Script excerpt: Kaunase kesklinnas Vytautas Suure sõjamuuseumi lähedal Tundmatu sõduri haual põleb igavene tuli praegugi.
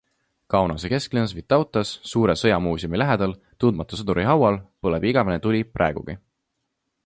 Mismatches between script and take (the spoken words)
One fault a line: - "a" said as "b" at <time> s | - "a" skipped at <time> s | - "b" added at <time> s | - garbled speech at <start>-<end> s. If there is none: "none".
none